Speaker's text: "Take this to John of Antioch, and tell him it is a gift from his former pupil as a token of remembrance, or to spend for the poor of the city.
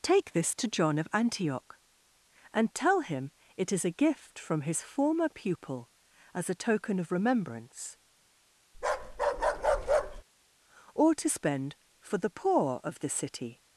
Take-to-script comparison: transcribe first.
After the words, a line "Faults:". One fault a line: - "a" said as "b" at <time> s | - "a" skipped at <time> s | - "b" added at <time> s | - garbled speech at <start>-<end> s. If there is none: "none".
"Take this to John of Antioch, and tell him it is a gift from his former pupil as a token of remembrance, or to spend for the poor of the city.
Faults:
none